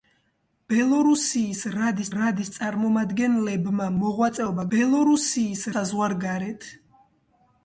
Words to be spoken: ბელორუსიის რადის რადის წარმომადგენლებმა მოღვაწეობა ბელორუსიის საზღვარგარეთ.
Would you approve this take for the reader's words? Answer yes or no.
yes